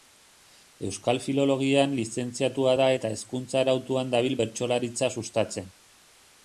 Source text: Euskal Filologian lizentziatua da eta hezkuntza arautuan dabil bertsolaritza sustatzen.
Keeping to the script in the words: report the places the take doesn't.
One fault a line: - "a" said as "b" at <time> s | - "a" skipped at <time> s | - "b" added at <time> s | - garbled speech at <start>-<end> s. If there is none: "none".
none